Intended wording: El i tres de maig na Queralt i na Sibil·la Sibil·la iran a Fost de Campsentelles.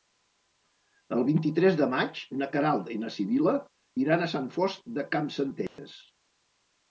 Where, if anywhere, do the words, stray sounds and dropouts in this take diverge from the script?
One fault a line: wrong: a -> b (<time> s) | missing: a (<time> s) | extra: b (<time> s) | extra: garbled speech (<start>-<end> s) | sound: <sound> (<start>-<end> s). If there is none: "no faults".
extra: vint (1.3 s)
missing: Sibil·la (3.5 s)
extra: Sant (4.4 s)
sound: dropout (5.7-5.8 s)